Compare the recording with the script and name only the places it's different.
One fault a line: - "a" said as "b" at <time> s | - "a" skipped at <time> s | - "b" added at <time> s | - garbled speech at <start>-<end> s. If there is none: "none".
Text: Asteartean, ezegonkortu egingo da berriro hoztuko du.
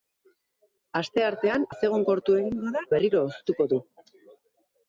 none